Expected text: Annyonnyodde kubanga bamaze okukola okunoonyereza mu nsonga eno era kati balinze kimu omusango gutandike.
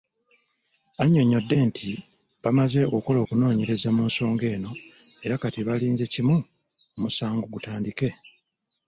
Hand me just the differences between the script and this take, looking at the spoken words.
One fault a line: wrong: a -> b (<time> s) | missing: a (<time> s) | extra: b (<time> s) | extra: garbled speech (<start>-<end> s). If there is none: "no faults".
wrong: kubanga -> nti (1.7 s)